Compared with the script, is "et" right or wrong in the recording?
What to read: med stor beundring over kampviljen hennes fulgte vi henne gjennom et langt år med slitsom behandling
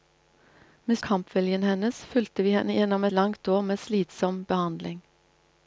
wrong